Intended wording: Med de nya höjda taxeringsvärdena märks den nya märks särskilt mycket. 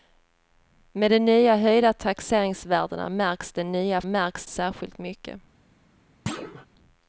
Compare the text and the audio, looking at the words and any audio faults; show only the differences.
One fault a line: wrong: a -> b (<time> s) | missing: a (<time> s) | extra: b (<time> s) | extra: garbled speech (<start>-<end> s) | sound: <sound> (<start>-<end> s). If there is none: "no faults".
sound: thud (6.3-6.7 s)